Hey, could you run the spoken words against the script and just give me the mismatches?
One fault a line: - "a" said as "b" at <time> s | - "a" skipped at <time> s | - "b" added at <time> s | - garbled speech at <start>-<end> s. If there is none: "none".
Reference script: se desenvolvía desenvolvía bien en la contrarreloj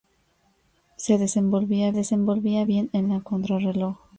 none